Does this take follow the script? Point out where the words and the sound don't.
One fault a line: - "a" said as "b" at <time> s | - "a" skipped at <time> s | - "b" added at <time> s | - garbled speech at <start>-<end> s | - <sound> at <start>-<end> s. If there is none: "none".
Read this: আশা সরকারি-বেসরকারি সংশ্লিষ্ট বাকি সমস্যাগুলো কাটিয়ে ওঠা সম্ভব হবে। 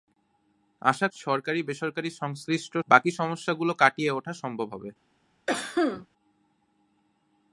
- cough at 5.5-6.1 s